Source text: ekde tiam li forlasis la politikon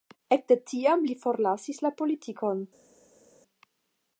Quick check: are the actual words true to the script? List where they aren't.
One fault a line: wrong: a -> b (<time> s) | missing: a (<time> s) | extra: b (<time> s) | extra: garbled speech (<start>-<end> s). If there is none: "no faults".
no faults